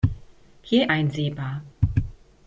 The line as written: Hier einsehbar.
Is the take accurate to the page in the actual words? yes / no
yes